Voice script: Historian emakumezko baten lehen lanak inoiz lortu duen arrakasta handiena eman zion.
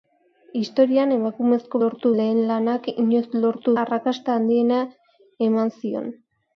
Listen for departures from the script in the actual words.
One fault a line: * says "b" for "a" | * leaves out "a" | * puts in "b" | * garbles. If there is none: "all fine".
* says "lortu" for "baten"
* leaves out "duen"